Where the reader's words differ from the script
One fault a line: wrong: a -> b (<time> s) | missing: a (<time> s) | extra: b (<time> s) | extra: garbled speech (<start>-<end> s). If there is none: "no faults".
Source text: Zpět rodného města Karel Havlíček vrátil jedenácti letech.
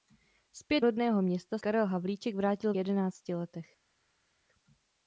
no faults